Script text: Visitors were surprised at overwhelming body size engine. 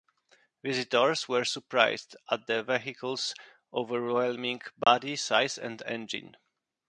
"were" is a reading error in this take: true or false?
false